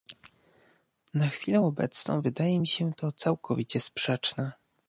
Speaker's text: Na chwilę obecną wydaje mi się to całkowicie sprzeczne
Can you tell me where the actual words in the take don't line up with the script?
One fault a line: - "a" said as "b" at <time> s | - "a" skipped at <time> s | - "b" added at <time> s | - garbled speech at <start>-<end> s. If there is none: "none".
none